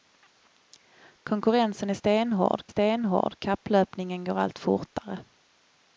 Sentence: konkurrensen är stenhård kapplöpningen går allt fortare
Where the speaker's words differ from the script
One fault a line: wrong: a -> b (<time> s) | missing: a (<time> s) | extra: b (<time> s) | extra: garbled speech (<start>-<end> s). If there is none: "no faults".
extra: stenhård (2.7 s)